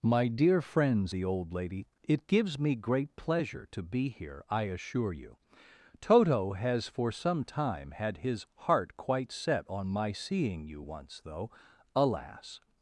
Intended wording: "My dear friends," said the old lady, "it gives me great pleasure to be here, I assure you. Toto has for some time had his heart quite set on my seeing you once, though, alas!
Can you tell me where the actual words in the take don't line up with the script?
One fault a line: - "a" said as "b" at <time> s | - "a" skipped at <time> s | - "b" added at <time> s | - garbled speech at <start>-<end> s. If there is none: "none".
- "said" skipped at 1.1 s